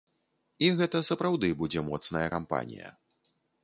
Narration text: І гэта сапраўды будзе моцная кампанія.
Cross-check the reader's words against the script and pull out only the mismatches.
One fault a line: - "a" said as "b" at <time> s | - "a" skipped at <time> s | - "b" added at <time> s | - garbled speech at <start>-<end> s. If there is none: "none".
none